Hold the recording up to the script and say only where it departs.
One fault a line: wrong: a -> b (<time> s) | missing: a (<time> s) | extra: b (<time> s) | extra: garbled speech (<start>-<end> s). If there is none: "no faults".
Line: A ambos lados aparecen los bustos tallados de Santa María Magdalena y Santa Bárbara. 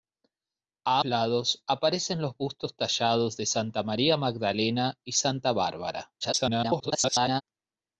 missing: ambos (1.0 s)
extra: garbled speech (6.2-7.4 s)